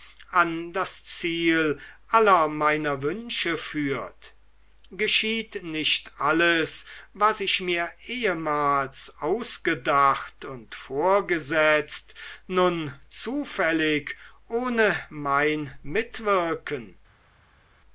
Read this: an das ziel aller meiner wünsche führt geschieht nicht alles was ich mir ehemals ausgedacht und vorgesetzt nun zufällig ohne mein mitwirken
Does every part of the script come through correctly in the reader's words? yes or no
yes